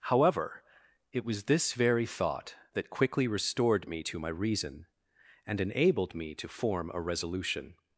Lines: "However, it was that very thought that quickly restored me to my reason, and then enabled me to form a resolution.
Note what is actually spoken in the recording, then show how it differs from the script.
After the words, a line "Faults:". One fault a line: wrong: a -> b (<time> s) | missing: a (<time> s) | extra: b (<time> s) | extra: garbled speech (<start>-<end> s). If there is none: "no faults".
"However, it was this very thought that quickly restored me to my reason, and enabled me to form a resolution.
Faults:
wrong: that -> this (1.4 s)
missing: then (5.6 s)